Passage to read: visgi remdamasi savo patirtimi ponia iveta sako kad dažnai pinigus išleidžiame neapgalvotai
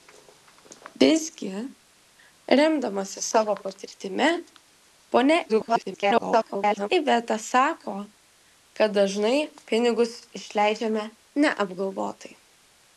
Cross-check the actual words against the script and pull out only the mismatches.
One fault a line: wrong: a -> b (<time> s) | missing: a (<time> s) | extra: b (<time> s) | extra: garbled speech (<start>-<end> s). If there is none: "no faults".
extra: garbled speech (5.5-6.9 s)